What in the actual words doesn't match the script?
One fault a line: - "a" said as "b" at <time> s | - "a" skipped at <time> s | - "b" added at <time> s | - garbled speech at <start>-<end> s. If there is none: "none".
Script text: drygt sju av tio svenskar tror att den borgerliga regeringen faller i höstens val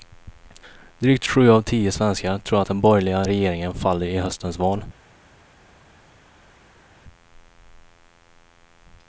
none